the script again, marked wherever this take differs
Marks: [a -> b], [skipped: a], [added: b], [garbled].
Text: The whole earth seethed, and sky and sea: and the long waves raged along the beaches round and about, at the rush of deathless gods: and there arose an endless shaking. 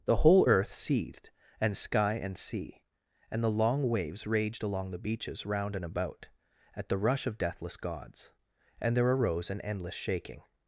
The whole earth seethed, and sky and sea: and the long waves raged along the beaches round and about, at the rush of deathless gods: and there arose an endless shaking.